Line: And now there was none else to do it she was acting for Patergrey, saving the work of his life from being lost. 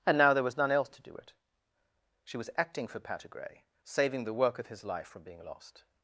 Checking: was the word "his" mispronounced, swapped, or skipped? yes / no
no